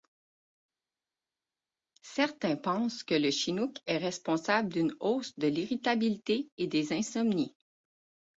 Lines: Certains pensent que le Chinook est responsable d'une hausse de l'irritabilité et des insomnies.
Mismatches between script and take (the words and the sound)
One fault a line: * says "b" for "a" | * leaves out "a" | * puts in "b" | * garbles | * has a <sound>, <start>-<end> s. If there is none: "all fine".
all fine